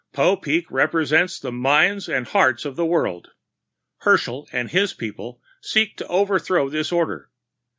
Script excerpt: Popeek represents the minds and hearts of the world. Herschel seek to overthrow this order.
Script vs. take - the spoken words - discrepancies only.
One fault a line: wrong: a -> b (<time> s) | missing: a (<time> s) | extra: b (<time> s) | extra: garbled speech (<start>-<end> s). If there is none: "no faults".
extra: and his people (4.5 s)